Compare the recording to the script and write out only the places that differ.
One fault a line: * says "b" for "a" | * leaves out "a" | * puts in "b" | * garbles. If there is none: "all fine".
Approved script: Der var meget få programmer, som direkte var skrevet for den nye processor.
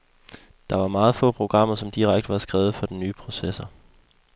all fine